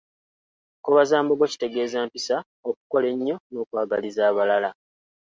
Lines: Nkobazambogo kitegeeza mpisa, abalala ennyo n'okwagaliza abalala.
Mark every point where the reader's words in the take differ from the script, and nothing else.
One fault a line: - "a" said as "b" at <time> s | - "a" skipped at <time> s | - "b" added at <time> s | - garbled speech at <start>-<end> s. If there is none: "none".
- "abalala" said as "okukola" at 2.7 s